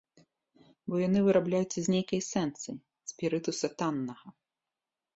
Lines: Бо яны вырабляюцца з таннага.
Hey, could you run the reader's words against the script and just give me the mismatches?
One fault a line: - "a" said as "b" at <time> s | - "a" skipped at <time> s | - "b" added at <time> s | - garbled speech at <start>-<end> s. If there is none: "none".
- "нейкай эсэнцыі спірытуса" added at 1.9 s